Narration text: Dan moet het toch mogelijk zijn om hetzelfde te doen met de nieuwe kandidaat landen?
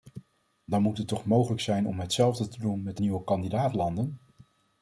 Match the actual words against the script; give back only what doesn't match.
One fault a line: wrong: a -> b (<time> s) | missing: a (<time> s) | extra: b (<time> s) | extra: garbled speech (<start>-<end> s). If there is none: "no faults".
no faults